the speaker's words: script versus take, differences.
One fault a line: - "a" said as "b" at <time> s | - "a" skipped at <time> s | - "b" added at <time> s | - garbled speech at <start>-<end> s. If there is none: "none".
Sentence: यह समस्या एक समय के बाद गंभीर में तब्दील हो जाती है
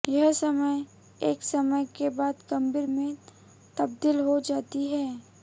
none